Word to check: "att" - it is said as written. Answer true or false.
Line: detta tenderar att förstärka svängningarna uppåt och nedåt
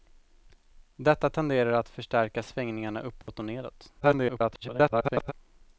true